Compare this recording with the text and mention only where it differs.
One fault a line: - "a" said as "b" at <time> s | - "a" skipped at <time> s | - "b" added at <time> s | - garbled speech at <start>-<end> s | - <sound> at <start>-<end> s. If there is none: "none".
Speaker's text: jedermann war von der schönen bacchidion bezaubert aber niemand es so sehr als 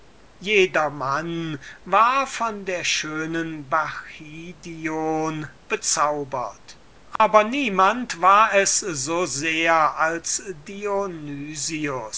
- dropout at 7.2-7.2 s
- "war" added at 8.2 s